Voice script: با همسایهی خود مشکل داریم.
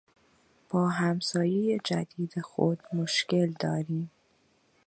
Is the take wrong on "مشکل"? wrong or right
right